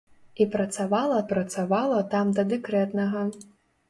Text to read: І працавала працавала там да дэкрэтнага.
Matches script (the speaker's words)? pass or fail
pass